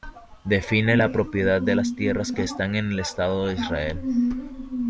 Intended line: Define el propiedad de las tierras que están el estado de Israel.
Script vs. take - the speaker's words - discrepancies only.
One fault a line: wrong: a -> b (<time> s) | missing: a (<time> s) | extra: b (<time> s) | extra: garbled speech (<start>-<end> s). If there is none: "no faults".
wrong: el -> la (1.0 s)
extra: en (2.8 s)